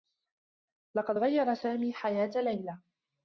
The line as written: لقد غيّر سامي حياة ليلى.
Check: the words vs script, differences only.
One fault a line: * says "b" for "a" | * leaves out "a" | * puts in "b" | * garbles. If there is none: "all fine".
all fine